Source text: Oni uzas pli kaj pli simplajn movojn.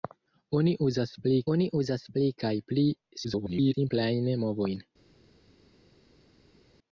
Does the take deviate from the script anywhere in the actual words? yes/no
yes